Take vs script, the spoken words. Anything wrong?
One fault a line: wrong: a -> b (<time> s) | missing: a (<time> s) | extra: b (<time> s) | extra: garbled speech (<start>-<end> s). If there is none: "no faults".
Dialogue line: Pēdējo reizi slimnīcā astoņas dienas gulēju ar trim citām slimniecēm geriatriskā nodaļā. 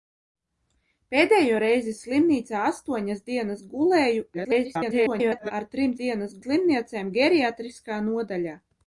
extra: garbled speech (4.3-5.5 s)
wrong: citām -> dienas (6.0 s)